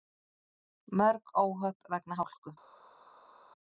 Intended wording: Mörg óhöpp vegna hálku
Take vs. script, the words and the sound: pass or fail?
pass